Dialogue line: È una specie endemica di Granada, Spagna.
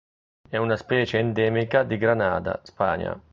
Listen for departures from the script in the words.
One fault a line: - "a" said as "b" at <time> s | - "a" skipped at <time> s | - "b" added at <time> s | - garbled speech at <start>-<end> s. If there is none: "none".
none